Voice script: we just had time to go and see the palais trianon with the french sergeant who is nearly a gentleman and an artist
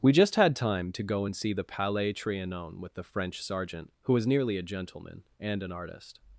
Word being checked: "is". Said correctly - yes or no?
no